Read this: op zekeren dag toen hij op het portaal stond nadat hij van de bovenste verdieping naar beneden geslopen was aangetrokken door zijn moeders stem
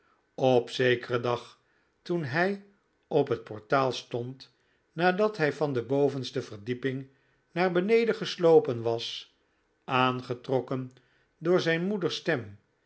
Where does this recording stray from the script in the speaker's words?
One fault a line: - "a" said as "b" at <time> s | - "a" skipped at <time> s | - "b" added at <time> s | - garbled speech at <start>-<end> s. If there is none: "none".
none